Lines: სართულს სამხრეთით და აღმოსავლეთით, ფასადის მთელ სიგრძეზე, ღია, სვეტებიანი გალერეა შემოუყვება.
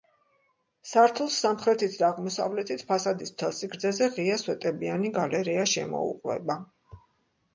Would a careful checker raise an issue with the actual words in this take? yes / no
no